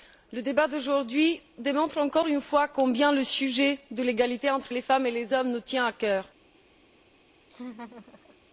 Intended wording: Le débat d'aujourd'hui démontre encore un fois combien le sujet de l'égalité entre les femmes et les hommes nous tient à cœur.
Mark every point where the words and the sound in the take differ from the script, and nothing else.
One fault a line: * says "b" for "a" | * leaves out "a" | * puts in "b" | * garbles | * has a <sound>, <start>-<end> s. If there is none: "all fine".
* says "une" for "un"
* has a laugh, 7.5-8.4 s